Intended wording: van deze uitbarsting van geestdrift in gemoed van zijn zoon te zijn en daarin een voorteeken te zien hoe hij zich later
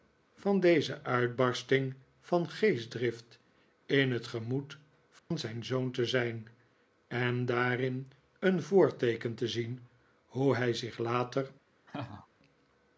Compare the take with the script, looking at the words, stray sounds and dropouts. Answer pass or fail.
fail